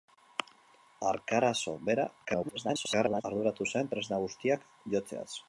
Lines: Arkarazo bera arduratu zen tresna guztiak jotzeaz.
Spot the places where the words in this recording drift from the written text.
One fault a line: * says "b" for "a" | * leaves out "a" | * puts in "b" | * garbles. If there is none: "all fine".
* garbles